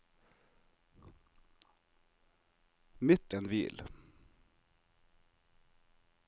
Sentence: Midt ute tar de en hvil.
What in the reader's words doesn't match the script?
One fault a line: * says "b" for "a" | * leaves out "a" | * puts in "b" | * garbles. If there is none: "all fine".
* leaves out "ute tar de"